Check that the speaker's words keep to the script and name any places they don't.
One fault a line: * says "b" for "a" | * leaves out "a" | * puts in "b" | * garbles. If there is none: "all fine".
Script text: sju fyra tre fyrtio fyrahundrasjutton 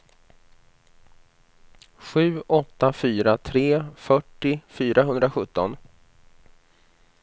* puts in "åtta"